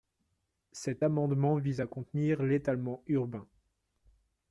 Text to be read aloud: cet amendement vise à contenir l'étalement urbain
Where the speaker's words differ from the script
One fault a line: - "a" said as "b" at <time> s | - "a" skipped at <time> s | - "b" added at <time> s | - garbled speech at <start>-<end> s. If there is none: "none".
none